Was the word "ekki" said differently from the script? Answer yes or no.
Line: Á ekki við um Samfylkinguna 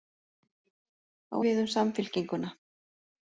yes